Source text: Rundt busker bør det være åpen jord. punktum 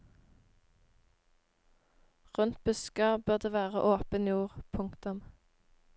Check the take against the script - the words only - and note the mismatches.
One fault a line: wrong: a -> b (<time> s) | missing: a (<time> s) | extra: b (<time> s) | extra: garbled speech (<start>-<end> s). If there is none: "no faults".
no faults